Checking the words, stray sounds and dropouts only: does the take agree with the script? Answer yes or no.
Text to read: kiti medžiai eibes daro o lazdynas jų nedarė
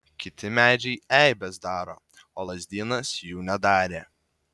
yes